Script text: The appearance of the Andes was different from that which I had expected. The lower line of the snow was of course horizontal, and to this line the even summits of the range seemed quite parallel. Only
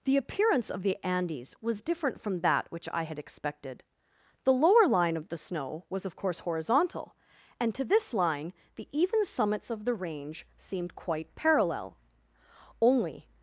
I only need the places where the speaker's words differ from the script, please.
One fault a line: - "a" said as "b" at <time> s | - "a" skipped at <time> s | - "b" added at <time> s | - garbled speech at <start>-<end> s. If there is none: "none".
none